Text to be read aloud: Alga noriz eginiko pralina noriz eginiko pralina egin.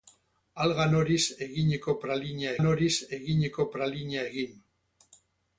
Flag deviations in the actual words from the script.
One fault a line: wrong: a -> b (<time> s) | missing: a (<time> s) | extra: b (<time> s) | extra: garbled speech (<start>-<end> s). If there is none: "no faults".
no faults